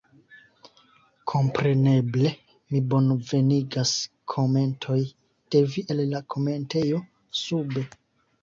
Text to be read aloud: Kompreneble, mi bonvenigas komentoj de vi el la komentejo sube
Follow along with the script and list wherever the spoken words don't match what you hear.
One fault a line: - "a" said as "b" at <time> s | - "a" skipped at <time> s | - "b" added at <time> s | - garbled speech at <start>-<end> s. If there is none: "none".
none